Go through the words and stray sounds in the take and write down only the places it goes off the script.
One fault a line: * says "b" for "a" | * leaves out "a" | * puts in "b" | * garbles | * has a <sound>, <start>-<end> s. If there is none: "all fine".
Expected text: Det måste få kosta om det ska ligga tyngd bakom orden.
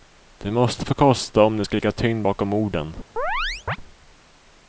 * has a chirp, 3.2-3.8 s